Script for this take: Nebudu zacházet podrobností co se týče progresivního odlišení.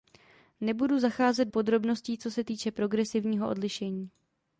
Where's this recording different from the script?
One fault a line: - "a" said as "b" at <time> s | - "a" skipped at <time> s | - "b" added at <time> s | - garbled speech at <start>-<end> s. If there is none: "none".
none